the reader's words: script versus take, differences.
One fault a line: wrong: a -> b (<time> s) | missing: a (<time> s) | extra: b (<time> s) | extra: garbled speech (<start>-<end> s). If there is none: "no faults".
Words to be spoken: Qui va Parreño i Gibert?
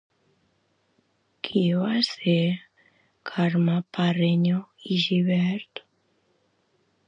extra: ser Carme (2.0 s)